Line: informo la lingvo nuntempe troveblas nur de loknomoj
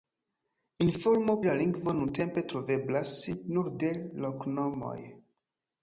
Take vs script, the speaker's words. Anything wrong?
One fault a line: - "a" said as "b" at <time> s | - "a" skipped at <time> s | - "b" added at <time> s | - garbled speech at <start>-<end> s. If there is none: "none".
none